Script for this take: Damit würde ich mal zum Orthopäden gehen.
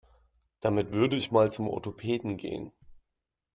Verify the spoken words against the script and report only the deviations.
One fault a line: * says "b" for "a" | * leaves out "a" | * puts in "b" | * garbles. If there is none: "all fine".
all fine